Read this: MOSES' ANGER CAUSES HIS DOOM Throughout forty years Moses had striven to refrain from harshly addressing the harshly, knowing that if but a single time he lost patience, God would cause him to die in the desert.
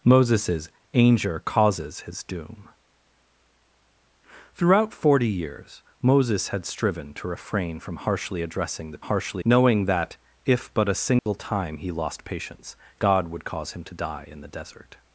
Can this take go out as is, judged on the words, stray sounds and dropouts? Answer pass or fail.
fail